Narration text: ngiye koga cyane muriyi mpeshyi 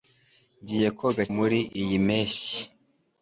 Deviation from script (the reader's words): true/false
true